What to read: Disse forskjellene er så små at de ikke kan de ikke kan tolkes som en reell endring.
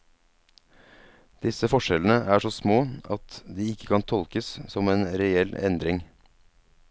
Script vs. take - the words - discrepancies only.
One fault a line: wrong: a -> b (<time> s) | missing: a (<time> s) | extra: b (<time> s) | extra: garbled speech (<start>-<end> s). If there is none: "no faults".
missing: de ikke kan (4.1 s)